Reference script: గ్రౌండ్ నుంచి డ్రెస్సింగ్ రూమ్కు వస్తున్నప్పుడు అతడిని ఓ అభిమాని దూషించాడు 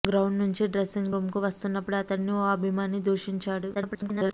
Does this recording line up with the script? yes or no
no